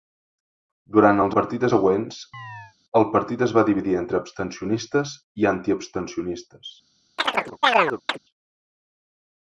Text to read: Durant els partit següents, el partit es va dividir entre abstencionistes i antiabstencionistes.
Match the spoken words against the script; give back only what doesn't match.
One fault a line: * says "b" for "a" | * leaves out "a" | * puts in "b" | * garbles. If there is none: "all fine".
all fine